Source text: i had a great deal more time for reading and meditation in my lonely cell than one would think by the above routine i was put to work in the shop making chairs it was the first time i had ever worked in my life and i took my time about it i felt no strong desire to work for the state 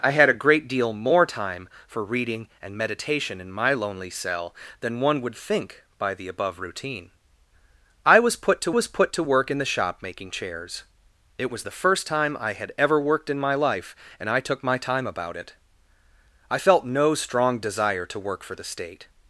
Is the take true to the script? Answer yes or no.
no